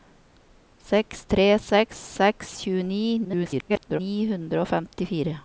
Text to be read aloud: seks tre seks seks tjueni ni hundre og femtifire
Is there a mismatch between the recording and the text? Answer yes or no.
yes